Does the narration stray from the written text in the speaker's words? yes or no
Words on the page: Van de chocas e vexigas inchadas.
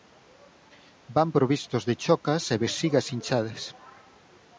yes